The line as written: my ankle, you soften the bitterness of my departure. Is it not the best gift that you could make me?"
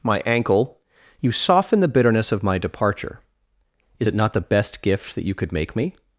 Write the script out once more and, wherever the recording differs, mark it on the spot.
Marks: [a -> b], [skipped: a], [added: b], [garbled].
my ankle, you soften the bitterness of my departure. Is it not the best gift that you could make me?"